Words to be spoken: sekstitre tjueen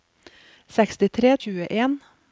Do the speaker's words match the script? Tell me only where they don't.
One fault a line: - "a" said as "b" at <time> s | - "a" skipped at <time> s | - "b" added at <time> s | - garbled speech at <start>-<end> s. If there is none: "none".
none